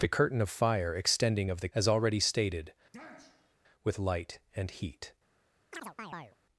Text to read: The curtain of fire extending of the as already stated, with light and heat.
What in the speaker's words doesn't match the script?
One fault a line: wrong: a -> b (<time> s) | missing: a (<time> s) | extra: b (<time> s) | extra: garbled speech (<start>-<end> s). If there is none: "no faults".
no faults